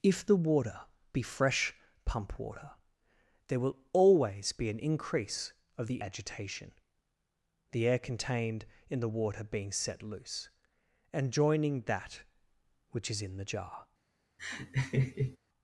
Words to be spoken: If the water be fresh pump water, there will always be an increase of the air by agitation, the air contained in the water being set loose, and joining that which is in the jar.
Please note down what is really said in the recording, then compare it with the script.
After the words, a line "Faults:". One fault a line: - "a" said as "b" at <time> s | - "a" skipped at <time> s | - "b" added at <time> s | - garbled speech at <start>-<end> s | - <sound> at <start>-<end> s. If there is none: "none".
If the water be fresh pump water, there will always be an increase of the agitation, the air contained in the water being set loose, and joining that which is in the jar.
Faults:
- "air by" skipped at 6.0 s
- laugh at 14.4-15.4 s